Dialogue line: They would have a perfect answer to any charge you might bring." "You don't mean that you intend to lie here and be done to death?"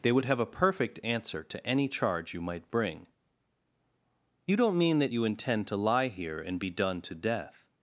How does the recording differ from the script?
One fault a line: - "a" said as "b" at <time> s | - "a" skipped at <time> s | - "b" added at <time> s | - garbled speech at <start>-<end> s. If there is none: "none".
none